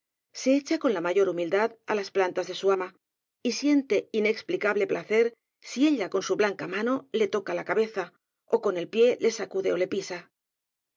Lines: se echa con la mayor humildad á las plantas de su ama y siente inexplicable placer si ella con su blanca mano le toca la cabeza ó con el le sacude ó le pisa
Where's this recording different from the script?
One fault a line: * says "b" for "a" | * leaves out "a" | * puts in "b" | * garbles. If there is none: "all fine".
* puts in "pie"